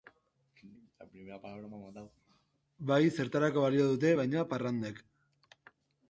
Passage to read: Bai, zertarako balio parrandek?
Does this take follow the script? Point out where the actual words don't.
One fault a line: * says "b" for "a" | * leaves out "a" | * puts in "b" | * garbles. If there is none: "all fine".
* puts in "dute baina"